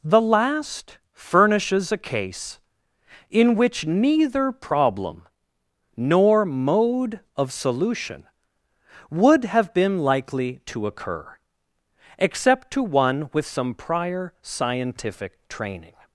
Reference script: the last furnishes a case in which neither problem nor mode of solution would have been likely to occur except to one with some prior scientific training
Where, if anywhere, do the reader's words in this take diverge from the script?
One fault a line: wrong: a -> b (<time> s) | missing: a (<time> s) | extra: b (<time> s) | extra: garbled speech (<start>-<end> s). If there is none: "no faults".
no faults